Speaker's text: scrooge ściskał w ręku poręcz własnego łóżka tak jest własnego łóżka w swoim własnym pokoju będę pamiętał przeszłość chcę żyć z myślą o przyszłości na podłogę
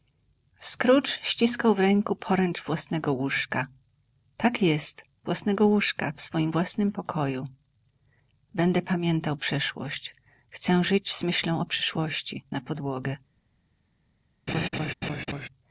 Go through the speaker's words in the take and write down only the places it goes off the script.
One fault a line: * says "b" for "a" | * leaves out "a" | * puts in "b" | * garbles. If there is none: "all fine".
all fine